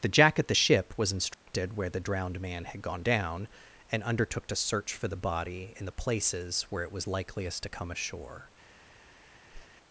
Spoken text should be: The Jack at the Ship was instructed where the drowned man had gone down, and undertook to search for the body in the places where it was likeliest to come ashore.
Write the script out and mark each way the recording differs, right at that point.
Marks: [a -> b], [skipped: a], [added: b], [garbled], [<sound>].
The Jack at the Ship was instructed [dropout] where the drowned man had gone down, and undertook to search for the body in the places where it was likeliest to come ashore. [whoosh]